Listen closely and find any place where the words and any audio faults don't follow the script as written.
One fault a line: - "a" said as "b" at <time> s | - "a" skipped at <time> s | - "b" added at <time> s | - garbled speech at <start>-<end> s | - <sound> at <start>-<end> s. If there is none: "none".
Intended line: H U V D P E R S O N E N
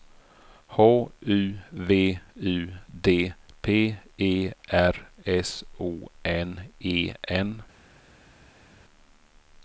- "U" added at 2.4 s